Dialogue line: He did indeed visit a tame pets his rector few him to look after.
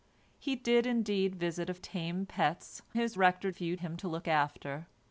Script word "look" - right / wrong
right